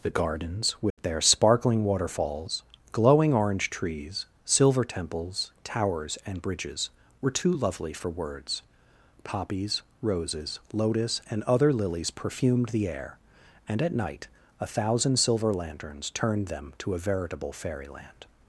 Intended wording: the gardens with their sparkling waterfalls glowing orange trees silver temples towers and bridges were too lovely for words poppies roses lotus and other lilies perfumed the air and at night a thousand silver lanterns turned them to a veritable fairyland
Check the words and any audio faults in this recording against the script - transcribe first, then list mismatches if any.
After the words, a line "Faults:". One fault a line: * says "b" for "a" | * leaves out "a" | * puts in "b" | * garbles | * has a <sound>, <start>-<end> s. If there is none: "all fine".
the gardens with their sparkling waterfalls glowing orange trees silver temples towers and bridges were too lovely for words poppies roses lotus and other lilies perfumed the air and at night a thousand silver lanterns turned them to a veritable fairyland
Faults:
* has a dropout, 0.9-1.0 s